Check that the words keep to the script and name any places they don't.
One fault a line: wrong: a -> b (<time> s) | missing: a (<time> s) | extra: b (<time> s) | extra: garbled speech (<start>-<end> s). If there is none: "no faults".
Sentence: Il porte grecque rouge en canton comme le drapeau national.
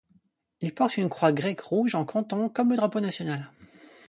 extra: une croix (1.0 s)